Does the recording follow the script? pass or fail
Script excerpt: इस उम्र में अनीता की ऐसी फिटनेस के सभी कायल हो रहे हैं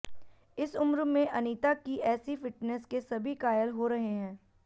pass